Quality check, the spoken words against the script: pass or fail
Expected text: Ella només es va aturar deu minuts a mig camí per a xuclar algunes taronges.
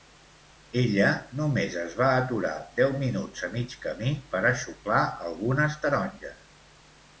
pass